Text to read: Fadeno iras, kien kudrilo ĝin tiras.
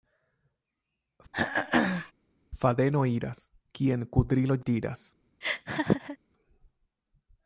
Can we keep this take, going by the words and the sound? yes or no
no